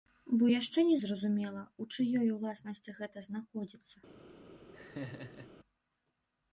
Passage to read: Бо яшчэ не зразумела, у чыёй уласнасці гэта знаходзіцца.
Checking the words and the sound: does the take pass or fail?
fail